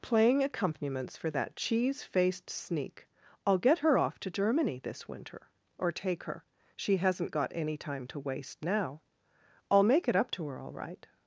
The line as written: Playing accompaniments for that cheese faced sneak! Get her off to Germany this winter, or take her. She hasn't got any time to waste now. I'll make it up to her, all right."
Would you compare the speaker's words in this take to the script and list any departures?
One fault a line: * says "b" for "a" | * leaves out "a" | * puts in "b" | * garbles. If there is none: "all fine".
* puts in "I'll"